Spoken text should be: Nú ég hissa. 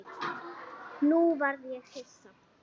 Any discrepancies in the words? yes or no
yes